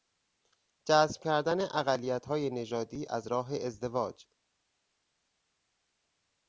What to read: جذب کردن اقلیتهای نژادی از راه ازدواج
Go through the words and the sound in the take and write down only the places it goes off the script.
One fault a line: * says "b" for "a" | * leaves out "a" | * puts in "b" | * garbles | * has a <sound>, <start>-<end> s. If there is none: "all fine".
all fine